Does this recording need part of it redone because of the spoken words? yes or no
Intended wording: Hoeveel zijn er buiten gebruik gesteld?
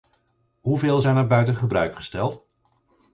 no